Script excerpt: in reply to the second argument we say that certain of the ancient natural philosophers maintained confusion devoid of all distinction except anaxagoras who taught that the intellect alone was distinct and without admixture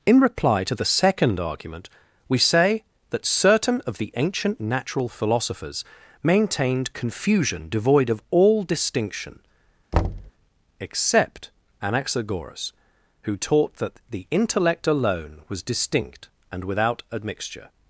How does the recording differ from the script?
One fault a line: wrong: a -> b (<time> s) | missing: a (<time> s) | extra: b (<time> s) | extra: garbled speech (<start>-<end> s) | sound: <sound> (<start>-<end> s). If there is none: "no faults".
sound: thud (9.9-10.3 s)